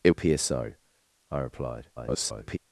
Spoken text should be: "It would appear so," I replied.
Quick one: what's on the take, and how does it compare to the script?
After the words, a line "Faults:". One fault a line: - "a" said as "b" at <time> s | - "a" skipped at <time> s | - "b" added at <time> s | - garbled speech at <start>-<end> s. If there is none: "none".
"It appear so," I replied. [garbled]
Faults:
- "would" skipped at 0.1 s
- garbled speech at 2.0-2.6 s